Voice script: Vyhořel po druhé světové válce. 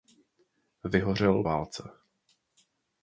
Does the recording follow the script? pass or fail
fail